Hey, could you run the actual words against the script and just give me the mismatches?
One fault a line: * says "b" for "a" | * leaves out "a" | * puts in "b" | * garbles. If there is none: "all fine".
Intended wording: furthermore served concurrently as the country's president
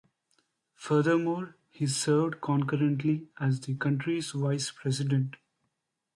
* puts in "he"
* puts in "vice"